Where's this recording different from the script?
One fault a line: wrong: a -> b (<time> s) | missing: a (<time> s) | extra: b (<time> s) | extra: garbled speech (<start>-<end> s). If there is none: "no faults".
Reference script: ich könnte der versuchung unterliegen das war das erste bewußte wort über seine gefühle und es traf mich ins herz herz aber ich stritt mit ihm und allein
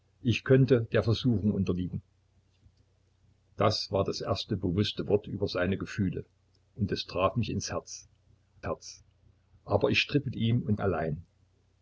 no faults